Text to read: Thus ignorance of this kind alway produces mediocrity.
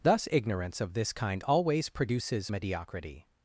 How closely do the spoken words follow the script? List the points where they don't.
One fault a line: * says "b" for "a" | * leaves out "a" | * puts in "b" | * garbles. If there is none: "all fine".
* says "always" for "alway"